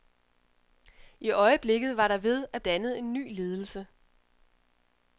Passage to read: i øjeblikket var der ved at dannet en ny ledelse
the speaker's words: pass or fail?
pass